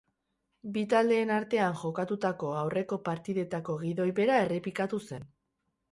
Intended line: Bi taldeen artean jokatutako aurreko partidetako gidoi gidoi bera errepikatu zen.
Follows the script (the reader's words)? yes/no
no